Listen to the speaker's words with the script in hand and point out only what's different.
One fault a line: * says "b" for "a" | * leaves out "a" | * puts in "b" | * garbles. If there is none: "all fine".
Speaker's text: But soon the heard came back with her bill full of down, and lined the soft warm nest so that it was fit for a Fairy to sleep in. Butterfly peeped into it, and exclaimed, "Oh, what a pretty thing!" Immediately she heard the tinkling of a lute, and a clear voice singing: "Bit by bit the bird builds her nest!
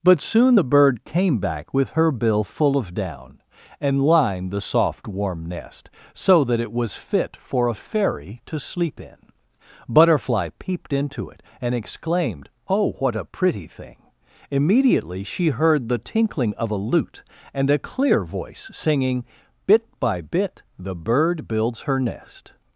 * says "bird" for "heard"